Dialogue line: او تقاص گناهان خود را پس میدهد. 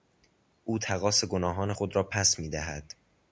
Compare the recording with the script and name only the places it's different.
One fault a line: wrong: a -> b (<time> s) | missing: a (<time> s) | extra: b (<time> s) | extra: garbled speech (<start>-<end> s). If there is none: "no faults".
no faults